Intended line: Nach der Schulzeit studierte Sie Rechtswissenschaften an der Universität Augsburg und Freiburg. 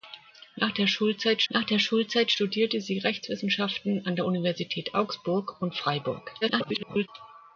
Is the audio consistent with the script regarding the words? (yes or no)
no